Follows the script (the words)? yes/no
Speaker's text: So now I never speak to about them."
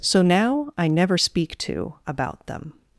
yes